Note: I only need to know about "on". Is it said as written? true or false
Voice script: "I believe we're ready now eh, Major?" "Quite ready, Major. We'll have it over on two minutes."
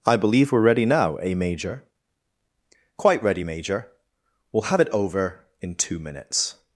false